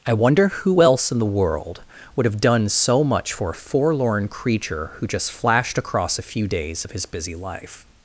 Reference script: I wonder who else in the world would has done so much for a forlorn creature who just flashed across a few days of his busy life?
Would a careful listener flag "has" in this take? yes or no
yes